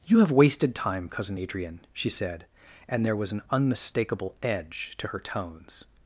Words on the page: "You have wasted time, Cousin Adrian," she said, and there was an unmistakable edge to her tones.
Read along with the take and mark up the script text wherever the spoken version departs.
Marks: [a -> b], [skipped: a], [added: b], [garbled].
"You have wasted time, Cousin Adrian," she said, and there was an unmistakable edge to her tones.